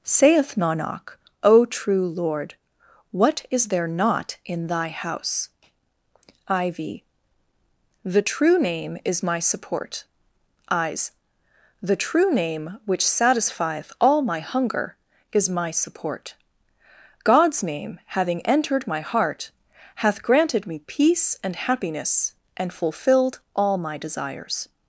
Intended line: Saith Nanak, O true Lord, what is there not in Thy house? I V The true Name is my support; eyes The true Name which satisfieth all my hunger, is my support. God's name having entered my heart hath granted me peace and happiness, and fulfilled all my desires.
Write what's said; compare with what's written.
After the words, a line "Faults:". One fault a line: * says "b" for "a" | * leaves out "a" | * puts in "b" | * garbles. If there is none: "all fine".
Saith Nanak, O true Lord, what is there not in Thy house? I V The true Name is my support; eyes The true Name which satisfieth all my hunger, is my support. God's name having entered my heart hath granted me peace and happiness, and fulfilled all my desires.
Faults:
all fine